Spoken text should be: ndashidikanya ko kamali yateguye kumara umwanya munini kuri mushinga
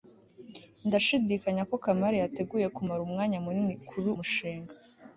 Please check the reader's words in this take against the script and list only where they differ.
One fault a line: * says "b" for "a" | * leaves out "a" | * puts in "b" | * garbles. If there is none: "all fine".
all fine